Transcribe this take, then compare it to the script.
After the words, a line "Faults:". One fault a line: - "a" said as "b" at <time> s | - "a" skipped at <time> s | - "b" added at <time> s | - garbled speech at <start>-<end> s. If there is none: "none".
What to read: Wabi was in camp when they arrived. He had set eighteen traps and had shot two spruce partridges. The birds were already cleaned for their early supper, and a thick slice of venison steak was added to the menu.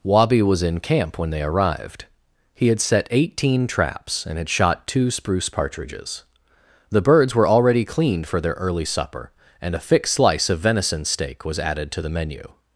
Wabi was in camp when they arrived. He had set eighteen traps and had shot two spruce partridges. The birds were already cleaned for their early supper, and a thick slice of venison steak was added to the menu.
Faults:
none